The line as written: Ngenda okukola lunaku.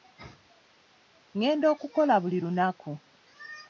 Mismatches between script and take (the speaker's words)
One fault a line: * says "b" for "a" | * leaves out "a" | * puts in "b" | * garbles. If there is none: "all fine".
* puts in "buli"